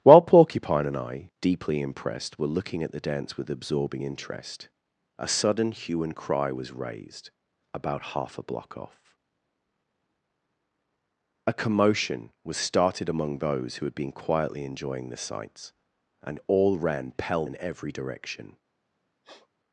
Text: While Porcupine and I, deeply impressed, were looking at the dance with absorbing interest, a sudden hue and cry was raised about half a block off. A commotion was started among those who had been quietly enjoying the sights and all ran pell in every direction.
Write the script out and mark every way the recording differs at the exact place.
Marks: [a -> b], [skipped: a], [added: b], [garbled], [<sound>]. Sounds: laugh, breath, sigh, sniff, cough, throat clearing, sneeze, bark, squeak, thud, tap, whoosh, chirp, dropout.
While Porcupine and I, deeply impressed, were looking at the dance with absorbing interest, a sudden hue and cry was raised about half a block off. A commotion was started among those who had been quietly enjoying the sights and all ran pell in every direction. [sniff]